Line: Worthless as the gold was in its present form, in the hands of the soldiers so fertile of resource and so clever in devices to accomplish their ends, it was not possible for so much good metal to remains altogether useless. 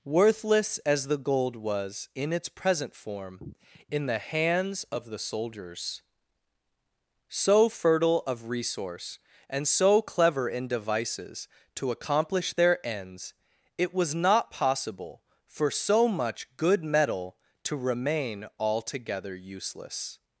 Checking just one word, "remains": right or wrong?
wrong